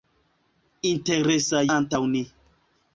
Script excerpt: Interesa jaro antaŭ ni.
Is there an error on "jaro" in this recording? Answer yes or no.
yes